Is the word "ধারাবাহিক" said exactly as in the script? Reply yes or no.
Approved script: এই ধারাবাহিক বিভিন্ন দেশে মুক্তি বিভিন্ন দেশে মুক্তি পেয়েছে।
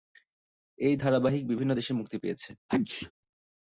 yes